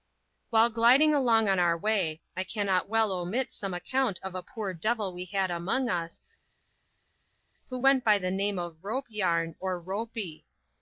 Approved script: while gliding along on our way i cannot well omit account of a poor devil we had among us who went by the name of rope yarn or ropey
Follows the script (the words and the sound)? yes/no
no